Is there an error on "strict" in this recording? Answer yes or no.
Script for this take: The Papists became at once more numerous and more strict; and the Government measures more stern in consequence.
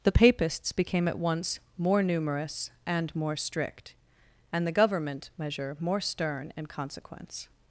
no